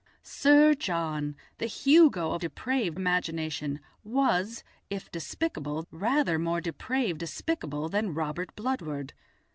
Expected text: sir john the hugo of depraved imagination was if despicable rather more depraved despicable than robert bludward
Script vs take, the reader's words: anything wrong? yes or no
no